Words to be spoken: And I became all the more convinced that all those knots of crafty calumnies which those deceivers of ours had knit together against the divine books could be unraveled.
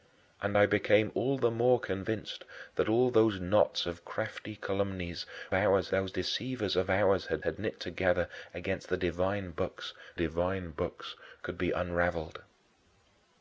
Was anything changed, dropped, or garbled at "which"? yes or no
yes